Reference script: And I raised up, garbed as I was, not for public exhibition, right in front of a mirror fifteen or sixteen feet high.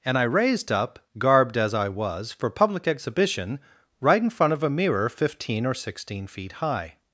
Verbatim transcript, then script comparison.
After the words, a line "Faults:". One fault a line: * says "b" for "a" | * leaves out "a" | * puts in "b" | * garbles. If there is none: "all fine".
And I raised up, garbed as I was, for public exhibition, right in front of a mirror fifteen or sixteen feet high.
Faults:
* leaves out "not"